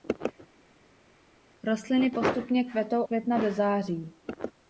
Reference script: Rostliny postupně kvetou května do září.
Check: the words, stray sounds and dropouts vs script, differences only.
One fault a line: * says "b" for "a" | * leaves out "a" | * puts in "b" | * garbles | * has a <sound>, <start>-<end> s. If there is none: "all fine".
all fine